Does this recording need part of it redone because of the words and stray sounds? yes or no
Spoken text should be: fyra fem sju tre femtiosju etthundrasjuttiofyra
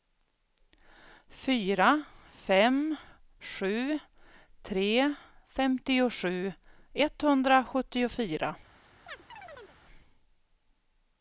yes